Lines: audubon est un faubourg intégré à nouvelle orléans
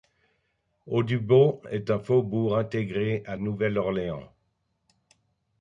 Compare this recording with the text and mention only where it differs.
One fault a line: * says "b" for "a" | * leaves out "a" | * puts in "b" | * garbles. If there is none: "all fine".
all fine